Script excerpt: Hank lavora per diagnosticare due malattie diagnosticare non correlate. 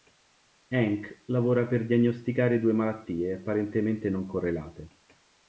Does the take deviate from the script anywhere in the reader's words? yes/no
yes